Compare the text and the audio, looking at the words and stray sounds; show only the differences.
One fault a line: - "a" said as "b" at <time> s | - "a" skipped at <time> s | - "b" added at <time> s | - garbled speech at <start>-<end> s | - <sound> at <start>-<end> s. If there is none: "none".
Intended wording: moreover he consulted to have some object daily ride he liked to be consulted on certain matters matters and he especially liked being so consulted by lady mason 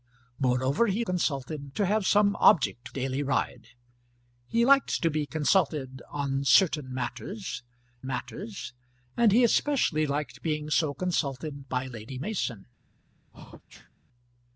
- sneeze at 13.3-13.9 s